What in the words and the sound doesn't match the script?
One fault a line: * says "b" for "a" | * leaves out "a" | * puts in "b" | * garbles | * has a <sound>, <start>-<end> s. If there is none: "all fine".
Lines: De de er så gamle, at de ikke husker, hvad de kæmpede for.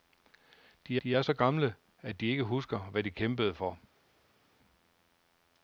all fine